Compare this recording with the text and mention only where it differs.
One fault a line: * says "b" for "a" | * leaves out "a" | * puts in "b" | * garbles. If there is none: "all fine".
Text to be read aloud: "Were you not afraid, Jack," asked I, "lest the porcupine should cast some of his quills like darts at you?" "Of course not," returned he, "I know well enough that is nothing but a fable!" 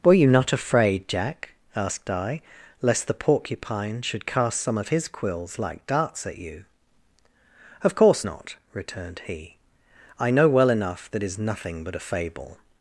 all fine